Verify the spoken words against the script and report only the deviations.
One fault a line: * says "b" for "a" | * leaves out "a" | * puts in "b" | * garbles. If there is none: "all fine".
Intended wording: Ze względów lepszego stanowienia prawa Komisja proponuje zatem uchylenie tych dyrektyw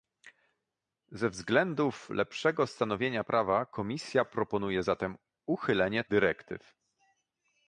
* leaves out "tych"